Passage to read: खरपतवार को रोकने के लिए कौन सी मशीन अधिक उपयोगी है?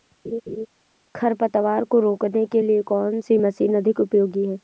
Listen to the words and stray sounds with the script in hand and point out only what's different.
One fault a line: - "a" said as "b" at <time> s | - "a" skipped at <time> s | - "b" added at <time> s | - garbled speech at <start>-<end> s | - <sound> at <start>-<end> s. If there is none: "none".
- laugh at 0.2-0.7 s